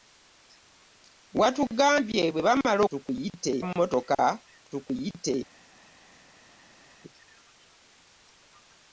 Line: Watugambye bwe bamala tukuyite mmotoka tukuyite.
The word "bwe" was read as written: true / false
true